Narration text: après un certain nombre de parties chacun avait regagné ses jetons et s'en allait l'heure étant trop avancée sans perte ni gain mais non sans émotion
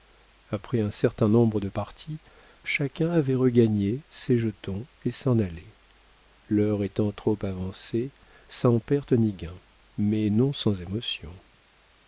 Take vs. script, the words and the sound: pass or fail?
pass